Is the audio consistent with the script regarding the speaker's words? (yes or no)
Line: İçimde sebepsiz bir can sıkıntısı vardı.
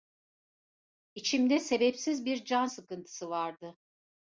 yes